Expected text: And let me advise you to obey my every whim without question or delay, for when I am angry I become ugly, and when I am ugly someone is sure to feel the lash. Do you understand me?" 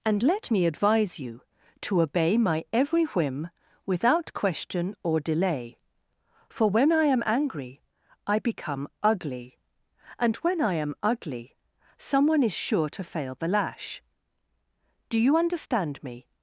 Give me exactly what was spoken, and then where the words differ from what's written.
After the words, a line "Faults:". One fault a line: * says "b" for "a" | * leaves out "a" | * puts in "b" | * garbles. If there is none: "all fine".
And let me advise you to obey my every whim without question or delay, for when I am angry I become ugly, and when I am ugly someone is sure to fail the lash. Do you understand me?"
Faults:
* says "fail" for "feel"